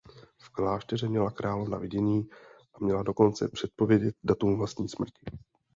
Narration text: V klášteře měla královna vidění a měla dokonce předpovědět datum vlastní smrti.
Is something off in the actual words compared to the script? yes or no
no